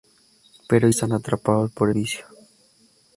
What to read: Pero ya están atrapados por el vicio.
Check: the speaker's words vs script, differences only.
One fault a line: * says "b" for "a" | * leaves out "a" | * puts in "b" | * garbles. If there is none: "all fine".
* leaves out "ya"
* leaves out "el"